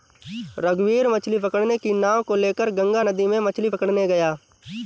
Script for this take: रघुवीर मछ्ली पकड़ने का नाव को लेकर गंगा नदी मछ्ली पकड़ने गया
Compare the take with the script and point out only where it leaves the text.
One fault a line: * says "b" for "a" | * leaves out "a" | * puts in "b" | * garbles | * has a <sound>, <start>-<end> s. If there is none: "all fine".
* says "की" for "का"
* puts in "में"